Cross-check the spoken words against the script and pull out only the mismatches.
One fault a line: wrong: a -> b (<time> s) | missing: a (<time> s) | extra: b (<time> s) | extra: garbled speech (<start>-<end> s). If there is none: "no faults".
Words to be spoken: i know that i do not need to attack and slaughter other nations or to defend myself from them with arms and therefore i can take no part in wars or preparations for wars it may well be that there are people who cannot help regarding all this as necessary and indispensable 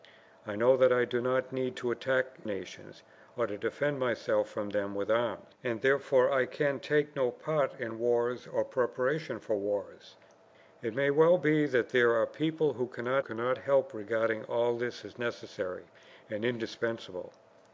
missing: and slaughter other (2.4 s)
extra: cannot (13.2 s)